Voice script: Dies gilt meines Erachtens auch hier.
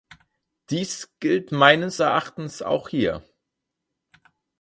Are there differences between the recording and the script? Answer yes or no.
no